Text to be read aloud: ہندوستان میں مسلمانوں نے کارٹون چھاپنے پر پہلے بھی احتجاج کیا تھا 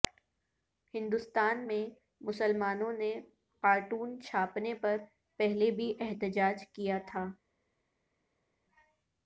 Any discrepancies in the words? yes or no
no